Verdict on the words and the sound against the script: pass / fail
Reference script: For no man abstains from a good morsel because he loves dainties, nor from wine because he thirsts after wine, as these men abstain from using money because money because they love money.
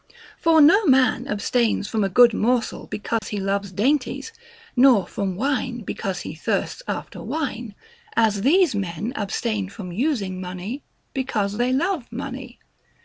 fail